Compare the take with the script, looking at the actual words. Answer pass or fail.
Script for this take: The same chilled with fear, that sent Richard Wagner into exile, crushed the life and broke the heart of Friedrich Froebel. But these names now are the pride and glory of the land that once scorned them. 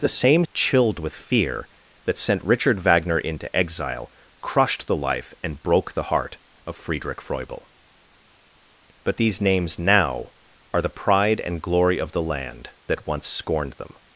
pass